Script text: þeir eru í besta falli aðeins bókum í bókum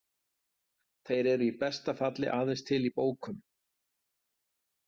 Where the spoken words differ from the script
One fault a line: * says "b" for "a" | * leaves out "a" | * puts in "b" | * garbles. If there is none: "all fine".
* says "til" for "bókum"